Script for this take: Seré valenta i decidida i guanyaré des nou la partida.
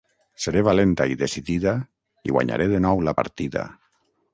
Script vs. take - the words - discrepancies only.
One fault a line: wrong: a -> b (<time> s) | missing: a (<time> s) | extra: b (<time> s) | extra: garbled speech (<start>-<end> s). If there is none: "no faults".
wrong: des -> de (2.7 s)